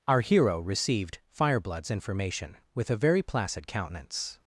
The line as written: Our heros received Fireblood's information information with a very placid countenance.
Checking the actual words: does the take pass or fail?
fail